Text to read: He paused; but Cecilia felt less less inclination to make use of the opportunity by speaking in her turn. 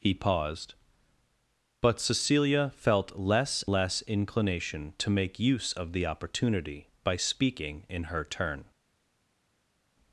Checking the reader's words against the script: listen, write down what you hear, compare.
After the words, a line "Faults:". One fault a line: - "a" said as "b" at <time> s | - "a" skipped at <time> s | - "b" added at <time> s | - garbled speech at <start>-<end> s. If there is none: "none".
He paused; but Cecilia felt less less inclination to make use of the opportunity by speaking in her turn.
Faults:
none